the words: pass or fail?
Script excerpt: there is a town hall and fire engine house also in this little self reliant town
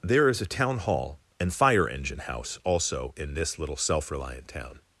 pass